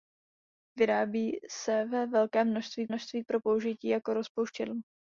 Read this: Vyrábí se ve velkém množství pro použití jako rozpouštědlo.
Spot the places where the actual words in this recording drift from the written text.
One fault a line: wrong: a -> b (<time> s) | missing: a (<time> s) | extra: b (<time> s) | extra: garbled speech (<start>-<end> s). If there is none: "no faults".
extra: množství (2.9 s)